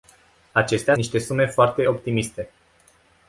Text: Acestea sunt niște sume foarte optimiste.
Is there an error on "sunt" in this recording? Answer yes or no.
yes